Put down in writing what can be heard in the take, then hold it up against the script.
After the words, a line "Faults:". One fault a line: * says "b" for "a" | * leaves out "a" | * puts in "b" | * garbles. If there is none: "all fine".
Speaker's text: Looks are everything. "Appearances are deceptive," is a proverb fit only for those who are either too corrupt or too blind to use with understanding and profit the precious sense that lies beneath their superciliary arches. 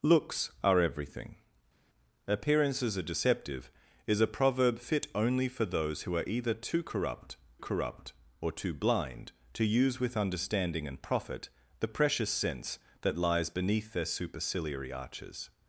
Looks are everything. "Appearances are deceptive," is a proverb fit only for those who are either too corrupt corrupt or too blind to use with understanding and profit the precious sense that lies beneath their superciliary arches.
Faults:
* puts in "corrupt"